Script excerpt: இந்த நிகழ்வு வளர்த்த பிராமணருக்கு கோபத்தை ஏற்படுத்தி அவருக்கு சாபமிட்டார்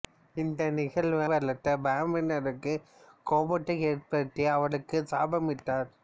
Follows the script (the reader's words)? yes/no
yes